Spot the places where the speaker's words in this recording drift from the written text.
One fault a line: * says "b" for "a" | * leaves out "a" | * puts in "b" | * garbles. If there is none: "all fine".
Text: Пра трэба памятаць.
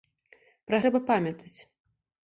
all fine